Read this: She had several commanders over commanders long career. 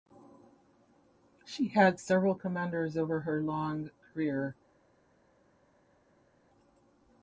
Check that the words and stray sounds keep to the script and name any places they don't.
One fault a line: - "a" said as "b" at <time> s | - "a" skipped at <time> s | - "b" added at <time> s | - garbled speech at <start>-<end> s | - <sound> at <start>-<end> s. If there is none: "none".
- "commanders" said as "her" at 3.2 s